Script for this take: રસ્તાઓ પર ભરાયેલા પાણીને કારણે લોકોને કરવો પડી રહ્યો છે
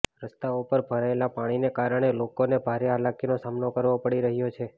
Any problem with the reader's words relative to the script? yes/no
yes